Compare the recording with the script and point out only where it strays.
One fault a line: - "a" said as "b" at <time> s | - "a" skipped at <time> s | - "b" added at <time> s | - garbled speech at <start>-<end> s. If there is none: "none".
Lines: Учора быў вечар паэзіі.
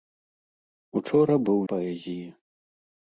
- "вечар" skipped at 1.6 s